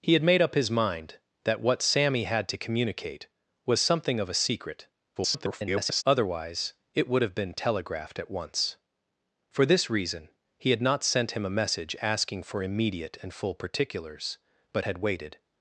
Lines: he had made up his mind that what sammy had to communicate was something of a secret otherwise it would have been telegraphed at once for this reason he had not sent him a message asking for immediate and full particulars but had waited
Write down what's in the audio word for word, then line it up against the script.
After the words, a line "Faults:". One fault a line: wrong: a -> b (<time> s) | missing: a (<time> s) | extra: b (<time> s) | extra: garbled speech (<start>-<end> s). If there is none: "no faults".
he had made up his mind that what sammy had to communicate was something of a secret [garbled] otherwise it would have been telegraphed at once for this reason he had not sent him a message asking for immediate and full particulars but had waited
Faults:
extra: garbled speech (5.2-6.0 s)